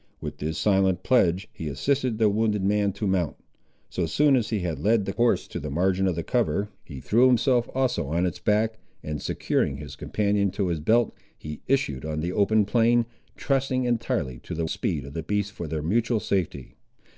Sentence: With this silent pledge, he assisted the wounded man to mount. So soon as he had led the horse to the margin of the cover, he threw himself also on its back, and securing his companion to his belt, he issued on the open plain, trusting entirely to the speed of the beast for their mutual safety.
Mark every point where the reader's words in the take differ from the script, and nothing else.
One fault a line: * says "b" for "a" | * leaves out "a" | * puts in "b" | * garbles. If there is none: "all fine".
all fine